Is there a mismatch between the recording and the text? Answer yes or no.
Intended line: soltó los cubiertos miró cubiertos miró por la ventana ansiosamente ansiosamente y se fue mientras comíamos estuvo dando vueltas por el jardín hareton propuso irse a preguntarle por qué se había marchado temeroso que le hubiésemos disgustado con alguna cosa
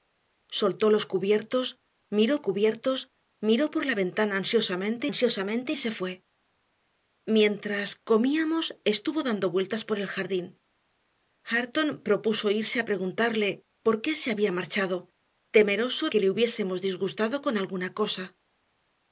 no